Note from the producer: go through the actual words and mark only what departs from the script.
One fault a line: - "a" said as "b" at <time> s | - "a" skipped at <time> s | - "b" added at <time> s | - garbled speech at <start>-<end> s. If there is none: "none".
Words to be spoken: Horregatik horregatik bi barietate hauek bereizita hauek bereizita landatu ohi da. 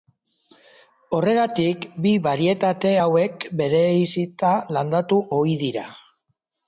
- "horregatik" skipped at 1.8 s
- "hauek bereizita" skipped at 4.5 s
- "da" said as "dira" at 5.6 s